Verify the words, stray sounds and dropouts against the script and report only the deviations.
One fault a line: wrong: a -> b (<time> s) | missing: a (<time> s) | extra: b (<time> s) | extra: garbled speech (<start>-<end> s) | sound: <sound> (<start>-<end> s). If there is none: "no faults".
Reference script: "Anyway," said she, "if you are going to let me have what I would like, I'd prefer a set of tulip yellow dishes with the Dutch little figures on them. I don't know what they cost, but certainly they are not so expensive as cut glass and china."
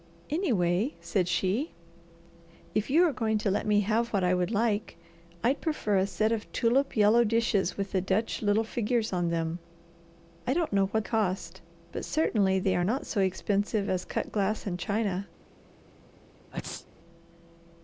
missing: they (11.1 s)
sound: sneeze (16.5-16.9 s)